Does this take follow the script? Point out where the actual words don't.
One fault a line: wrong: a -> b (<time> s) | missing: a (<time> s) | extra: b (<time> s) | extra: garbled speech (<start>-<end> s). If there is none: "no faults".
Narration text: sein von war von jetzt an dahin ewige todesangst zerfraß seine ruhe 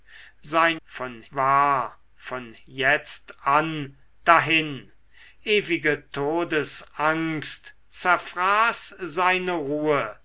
no faults